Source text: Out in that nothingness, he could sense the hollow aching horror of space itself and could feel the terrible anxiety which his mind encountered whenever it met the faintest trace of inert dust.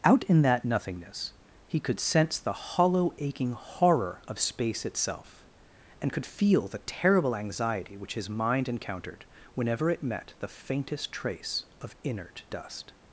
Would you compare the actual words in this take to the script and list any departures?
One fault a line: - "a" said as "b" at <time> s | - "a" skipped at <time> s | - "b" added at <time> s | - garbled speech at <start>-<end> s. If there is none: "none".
none